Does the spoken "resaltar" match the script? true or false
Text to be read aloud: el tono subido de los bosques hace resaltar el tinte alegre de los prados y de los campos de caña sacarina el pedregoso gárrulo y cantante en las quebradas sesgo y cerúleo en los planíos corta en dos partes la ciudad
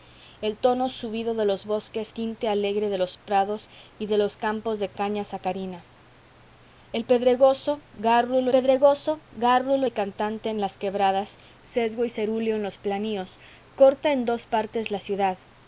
false